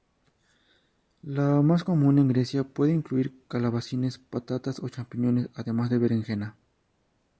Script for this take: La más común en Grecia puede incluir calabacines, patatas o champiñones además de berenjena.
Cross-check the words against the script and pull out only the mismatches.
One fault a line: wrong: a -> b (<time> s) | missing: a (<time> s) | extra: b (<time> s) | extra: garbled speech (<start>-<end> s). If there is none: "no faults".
no faults